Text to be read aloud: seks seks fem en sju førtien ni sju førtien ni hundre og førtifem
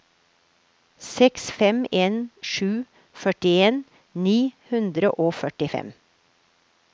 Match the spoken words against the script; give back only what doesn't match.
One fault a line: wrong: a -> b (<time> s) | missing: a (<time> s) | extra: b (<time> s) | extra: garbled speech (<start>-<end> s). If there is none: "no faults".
missing: seks (1.4 s)
missing: sju førtien ni (4.4 s)